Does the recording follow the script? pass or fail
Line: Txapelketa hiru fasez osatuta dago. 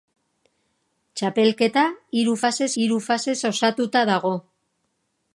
fail